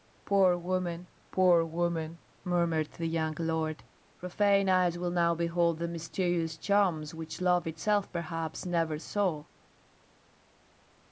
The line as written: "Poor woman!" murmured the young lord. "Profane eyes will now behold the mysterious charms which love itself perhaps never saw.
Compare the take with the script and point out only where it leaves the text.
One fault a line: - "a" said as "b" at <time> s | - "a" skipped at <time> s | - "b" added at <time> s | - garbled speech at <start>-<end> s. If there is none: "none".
- "poor woman" added at 1.3 s